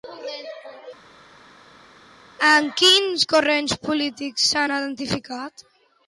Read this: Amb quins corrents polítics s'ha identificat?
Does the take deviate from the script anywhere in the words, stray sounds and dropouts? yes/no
no